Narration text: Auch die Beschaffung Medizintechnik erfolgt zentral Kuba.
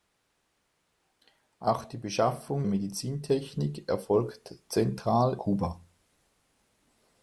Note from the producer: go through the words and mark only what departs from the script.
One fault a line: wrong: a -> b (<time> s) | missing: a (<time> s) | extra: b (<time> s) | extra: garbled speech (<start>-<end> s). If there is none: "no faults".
no faults